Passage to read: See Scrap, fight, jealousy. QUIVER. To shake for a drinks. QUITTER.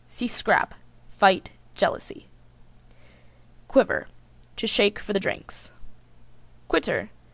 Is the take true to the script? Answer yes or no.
no